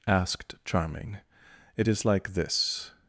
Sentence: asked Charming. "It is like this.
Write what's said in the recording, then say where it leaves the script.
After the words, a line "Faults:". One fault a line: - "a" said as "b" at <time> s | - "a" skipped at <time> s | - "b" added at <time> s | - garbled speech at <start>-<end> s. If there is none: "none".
asked Charming. "It is like this.
Faults:
none